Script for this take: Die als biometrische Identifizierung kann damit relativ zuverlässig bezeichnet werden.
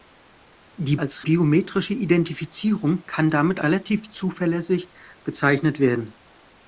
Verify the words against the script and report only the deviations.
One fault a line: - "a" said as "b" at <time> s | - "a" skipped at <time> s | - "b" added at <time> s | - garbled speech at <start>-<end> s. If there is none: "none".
none